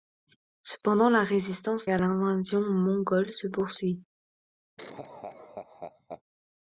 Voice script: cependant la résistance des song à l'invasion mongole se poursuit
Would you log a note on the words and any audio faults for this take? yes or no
yes